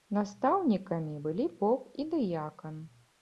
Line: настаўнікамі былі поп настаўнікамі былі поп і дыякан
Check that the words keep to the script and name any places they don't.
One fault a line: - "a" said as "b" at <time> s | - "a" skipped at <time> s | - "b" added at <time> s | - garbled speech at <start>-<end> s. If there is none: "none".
- "настаўнікамі былі поп" skipped at 2.0 s